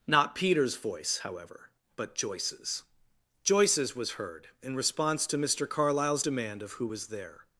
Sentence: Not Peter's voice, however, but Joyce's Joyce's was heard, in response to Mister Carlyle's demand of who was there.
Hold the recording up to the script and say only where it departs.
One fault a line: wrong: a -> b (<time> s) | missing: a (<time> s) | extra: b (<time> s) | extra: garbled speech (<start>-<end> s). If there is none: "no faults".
no faults